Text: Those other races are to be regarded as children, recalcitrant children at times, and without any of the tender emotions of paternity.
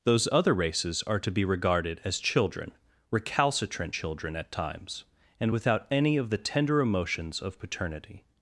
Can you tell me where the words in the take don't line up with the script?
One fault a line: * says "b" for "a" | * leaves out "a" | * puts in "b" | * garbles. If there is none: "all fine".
all fine